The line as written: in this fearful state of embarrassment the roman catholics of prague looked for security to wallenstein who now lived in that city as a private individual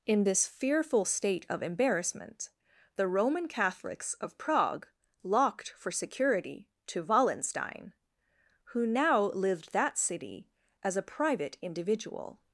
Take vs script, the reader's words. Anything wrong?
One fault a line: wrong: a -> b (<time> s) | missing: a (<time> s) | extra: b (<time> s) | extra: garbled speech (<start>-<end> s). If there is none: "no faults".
wrong: looked -> locked (5.2 s)
missing: in (9.7 s)